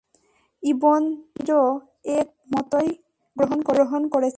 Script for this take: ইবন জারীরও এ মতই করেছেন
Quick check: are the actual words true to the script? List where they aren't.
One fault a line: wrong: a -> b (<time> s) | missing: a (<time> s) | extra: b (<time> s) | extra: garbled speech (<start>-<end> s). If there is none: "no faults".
extra: গ্রহণ (3.4 s)